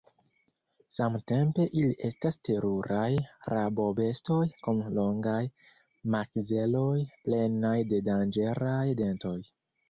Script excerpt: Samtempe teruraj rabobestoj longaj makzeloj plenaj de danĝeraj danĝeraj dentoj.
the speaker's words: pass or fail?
fail